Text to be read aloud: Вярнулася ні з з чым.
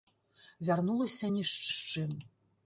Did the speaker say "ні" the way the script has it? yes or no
yes